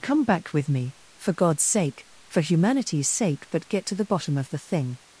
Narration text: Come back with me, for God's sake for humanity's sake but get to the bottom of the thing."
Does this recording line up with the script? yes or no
yes